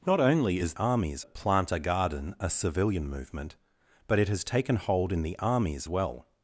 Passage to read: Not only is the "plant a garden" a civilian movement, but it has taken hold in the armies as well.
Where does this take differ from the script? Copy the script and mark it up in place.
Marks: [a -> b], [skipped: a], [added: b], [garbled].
Not only is [the -> armies] "plant a garden" a civilian movement, but it has taken hold in the armies [skipped: as] well.